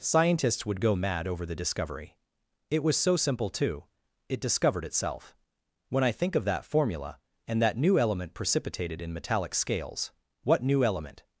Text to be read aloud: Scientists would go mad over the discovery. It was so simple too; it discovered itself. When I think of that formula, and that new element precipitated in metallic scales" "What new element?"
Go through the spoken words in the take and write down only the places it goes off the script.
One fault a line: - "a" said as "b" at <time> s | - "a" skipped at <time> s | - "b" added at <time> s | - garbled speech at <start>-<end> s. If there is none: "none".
none